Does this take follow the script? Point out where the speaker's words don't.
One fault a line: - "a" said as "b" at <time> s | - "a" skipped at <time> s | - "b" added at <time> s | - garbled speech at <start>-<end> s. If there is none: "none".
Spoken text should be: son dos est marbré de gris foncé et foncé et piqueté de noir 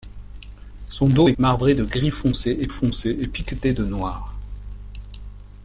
none